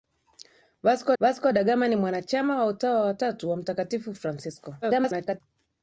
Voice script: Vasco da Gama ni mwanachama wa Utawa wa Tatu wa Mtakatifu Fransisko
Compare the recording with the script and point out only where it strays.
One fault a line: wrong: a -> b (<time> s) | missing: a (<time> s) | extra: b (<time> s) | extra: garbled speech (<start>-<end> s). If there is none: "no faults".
extra: vasco (1.2 s)
extra: garbled speech (4.8-5.4 s)